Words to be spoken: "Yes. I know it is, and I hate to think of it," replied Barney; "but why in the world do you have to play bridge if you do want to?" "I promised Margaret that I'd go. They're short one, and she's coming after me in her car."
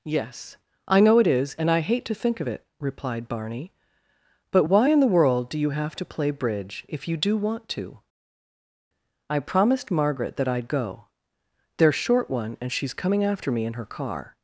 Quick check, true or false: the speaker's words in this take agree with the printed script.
true